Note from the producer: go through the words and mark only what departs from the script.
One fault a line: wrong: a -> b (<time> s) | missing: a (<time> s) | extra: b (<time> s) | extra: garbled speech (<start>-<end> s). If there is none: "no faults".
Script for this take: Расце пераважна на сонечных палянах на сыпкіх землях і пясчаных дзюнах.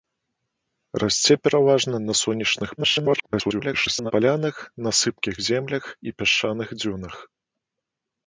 extra: garbled speech (2.8-4.1 s)